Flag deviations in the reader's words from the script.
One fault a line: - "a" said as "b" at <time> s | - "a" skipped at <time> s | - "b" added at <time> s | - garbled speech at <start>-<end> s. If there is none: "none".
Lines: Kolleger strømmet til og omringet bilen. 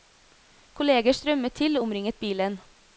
none